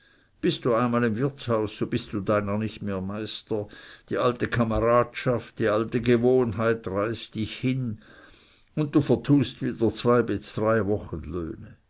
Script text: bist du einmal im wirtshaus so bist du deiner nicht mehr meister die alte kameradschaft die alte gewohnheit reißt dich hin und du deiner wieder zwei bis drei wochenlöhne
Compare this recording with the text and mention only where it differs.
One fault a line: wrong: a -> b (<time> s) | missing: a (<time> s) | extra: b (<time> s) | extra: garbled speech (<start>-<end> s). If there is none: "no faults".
wrong: deiner -> vertust (9.0 s)